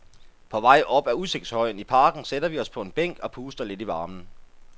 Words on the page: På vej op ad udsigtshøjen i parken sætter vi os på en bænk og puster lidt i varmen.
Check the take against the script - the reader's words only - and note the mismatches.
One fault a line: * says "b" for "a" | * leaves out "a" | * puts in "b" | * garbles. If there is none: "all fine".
all fine